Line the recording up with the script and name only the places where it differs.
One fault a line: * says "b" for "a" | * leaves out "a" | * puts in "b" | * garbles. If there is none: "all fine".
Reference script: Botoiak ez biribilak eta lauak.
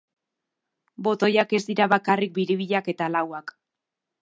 * puts in "dira bakarrik"